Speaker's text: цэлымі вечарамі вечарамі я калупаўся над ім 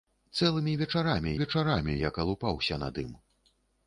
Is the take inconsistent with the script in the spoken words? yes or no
no